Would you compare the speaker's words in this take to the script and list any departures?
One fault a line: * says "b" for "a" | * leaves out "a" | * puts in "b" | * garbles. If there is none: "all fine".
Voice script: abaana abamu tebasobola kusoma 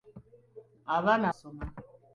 * leaves out "abamu tebasobola"